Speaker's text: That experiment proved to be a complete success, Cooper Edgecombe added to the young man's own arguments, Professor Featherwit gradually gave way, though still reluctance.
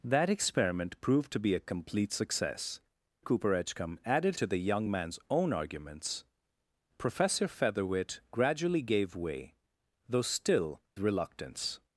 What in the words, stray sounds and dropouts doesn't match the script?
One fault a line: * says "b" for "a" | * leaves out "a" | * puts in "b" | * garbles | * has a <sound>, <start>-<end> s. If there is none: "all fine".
all fine